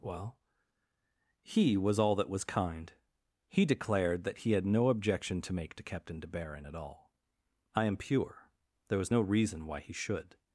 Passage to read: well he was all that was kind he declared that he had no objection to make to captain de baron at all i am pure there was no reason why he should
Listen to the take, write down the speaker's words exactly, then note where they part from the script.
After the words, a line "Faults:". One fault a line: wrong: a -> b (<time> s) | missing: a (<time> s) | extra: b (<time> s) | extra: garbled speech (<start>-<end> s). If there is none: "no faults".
well he was all that was kind he declared that he had no objection to make to captain de baron at all i am pure there was no reason why he should
Faults:
no faults